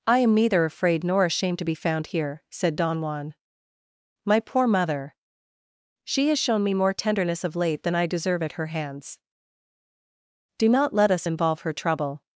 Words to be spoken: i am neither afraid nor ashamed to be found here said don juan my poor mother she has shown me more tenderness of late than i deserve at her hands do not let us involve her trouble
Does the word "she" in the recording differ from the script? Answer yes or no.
no